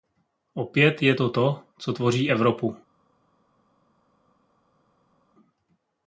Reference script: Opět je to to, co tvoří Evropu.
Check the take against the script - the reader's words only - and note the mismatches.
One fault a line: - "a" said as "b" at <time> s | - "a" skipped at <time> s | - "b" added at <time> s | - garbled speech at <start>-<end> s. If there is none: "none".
none